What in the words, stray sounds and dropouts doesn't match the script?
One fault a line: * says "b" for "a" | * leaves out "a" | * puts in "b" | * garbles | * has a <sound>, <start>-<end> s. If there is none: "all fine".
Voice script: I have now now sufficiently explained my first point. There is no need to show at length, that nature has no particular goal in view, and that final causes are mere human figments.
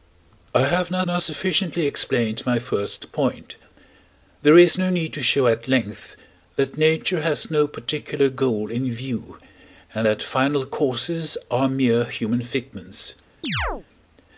* has a chirp, 13.4-13.9 s